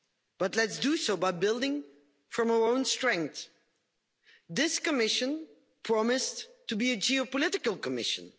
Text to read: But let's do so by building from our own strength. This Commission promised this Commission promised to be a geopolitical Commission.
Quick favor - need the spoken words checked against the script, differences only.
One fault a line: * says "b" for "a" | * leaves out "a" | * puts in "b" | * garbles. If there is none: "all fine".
* leaves out "this Commission promised"